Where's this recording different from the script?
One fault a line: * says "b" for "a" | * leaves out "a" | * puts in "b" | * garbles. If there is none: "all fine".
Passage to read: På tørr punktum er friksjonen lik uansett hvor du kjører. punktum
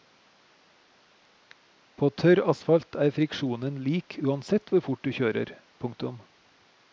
* says "asfalt" for "punktum"
* puts in "fort"